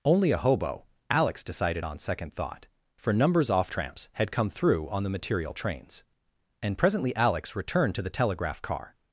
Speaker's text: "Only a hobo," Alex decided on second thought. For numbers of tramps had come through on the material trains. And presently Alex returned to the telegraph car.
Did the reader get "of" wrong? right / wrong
wrong